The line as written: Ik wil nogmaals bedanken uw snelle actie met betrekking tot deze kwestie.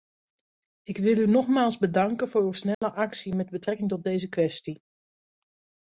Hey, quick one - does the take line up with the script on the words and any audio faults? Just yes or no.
no